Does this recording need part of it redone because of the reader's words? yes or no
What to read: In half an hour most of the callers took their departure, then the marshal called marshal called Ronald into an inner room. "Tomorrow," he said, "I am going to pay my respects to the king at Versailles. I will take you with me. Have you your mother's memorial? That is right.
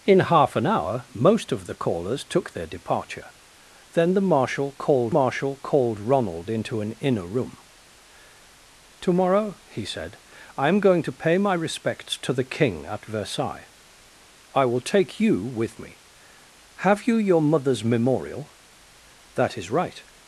no